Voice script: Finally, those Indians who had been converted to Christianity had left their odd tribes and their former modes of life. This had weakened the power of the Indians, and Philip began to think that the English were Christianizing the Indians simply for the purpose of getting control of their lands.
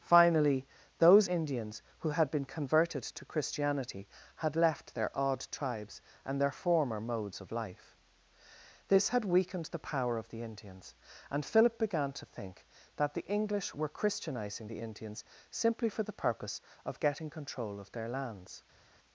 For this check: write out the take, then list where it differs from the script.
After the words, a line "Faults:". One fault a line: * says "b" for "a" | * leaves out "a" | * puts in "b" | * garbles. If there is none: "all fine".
Finally, those Indians who had been converted to Christianity had left their odd tribes and their former modes of life. This had weakened the power of the Indians, and Philip began to think that the English were Christianizing the Indians simply for the purpose of getting control of their lands.
Faults:
all fine